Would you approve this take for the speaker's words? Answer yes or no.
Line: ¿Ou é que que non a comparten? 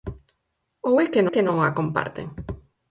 yes